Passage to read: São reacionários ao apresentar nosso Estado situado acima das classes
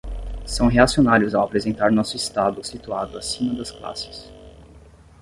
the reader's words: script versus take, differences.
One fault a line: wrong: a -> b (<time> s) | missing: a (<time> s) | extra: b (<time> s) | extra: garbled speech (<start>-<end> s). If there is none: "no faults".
no faults